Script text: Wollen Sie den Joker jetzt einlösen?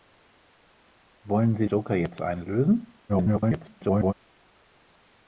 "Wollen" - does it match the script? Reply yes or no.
yes